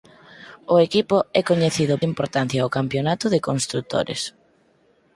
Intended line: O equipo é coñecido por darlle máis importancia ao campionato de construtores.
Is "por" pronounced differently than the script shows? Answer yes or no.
yes